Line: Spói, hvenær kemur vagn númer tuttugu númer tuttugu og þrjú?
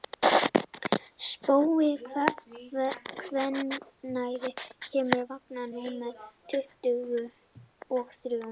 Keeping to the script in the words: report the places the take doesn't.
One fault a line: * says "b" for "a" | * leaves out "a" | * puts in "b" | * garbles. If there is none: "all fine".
* leaves out "númer tuttugu"